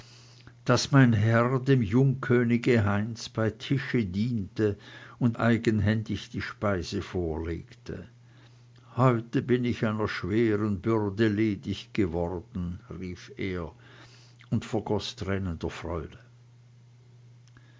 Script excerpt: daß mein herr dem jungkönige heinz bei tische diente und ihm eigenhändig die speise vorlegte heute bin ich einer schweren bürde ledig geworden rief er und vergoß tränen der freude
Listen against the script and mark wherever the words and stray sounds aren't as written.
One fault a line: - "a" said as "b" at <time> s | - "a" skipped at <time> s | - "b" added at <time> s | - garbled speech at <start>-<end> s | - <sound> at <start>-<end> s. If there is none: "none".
- "ihm" skipped at 5.4 s